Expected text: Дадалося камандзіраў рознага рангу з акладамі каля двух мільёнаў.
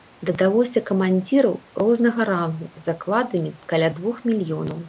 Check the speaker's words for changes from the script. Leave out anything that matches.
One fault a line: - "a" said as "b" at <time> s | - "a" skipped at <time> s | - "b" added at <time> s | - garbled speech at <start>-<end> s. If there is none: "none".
none